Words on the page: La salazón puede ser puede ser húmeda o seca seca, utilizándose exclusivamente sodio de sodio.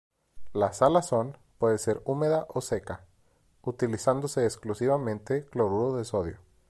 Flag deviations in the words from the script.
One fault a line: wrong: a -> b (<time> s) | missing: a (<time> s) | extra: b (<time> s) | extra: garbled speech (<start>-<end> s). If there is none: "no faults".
missing: puede ser (2.0 s)
missing: seca (3.0 s)
wrong: sodio -> cloruro (5.5 s)